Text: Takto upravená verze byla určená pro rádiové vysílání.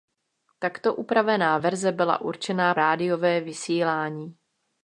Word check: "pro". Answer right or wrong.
wrong